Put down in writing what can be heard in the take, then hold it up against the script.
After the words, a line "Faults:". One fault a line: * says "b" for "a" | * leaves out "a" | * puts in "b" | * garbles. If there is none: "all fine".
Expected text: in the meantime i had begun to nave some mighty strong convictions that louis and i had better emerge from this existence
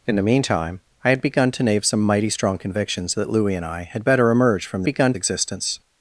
in the meantime i had begun to nave some mighty strong convictions that louis and i had better emerge from begun existence
Faults:
* says "begun" for "this"